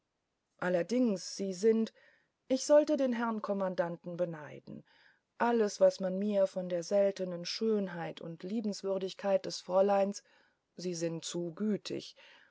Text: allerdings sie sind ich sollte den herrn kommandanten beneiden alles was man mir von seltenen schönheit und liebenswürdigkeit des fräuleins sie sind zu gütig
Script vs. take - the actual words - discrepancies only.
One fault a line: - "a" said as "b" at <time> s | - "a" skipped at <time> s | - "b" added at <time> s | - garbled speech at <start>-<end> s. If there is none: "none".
- "der" added at 6.7 s